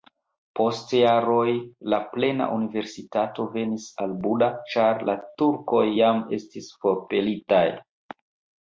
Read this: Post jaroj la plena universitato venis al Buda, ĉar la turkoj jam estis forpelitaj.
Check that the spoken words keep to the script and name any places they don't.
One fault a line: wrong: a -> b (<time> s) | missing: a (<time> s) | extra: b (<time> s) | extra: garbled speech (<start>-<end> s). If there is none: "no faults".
no faults